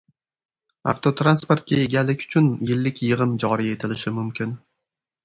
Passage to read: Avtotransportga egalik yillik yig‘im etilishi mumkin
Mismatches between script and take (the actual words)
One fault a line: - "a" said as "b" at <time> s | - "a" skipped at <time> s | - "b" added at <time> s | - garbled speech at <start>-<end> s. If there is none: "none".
- "uchun" added at 2.3 s
- "joriy" added at 3.5 s